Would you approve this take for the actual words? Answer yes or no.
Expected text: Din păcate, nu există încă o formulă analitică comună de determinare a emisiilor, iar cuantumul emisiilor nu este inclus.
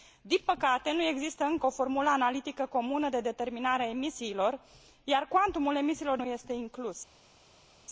yes